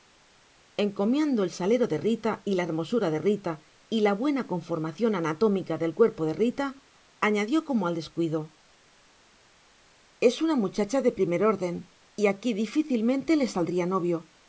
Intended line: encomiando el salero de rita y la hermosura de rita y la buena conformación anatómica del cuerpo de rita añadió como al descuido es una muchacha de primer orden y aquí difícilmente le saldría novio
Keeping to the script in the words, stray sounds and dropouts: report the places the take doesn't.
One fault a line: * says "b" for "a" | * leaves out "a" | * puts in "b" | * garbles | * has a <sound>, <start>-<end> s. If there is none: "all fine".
all fine